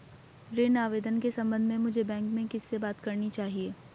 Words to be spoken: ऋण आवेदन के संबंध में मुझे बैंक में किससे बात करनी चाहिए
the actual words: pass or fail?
pass